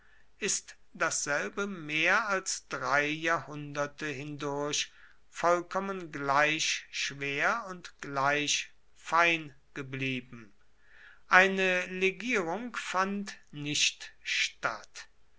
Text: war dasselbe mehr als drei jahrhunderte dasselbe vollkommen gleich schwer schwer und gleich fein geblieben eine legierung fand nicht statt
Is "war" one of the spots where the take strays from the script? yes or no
yes